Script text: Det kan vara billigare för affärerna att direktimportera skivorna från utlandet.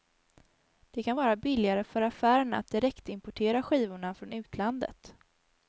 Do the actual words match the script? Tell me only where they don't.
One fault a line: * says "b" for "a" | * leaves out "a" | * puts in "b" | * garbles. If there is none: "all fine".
all fine